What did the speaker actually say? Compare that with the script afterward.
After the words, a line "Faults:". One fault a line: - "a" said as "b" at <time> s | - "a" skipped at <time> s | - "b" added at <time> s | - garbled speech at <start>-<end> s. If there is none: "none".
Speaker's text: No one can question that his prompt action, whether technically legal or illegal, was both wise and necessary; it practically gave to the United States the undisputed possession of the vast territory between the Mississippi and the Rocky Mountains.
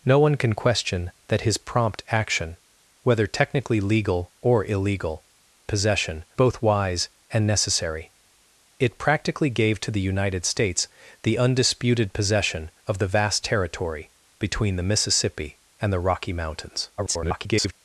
No one can question that his prompt action, whether technically legal or illegal, possession both wise and necessary; it practically gave to the United States the undisputed possession of the vast territory between the Mississippi and the Rocky Mountains. [garbled]
Faults:
- "was" said as "possession" at 5.7 s
- garbled speech at 17.0-17.7 s